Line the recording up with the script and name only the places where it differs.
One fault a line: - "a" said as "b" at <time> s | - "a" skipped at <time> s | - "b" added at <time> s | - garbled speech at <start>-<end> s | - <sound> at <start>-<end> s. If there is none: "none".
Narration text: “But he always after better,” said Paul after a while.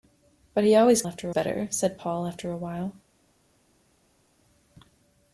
none